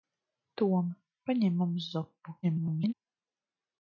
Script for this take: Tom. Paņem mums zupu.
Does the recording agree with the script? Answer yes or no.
no